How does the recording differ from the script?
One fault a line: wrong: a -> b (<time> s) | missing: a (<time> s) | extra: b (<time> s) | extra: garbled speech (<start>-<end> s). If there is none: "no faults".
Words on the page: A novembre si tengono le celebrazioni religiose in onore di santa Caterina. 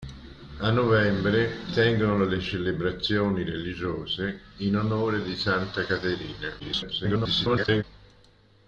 missing: si (1.7 s)
extra: garbled speech (6.6-7.8 s)